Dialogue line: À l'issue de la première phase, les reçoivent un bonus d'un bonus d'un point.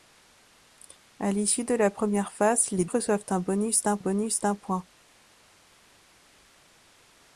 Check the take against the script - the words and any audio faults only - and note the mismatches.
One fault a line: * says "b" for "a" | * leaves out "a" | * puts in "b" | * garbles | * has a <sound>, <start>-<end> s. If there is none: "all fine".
all fine